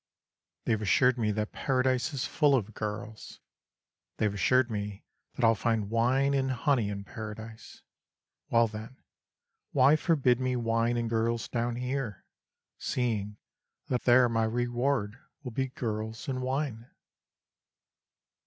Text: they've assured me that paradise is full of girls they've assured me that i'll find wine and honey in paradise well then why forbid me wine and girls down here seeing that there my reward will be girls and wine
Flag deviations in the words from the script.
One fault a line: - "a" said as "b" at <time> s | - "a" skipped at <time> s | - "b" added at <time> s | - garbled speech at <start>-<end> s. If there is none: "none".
none